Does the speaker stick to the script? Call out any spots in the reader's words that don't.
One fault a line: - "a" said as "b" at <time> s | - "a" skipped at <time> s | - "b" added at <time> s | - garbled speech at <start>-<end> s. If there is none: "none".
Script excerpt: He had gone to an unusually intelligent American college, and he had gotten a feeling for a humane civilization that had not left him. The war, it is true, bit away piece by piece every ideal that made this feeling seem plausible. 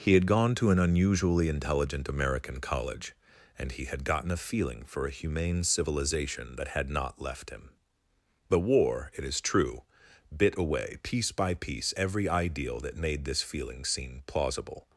none